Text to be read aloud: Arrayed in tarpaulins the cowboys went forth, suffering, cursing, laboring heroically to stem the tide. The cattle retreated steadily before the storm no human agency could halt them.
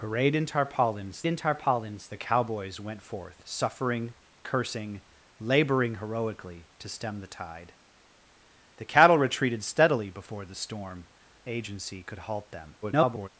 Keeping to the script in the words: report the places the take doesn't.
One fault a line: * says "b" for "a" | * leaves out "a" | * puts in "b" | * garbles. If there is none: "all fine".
* puts in "in tarpaulins"
* leaves out "no human"
* garbles